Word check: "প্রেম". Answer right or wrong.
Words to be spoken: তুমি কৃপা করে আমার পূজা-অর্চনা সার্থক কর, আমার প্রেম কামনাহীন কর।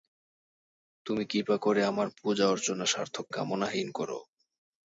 wrong